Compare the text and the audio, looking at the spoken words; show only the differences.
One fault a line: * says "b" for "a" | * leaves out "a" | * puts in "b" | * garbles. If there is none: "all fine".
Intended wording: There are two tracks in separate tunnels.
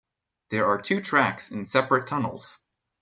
all fine